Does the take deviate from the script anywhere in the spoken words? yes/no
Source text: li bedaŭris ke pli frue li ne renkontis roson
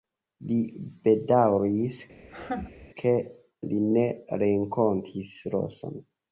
yes